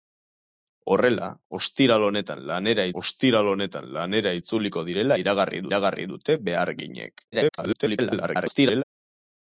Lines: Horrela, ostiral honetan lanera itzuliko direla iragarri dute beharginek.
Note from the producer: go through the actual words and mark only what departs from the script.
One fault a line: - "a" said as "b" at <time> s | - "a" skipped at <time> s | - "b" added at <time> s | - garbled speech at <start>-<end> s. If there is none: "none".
- "ostiral honetan lanera" added at 3.0 s
- "iragarri" added at 5.7 s
- garbled speech at 7.3-8.8 s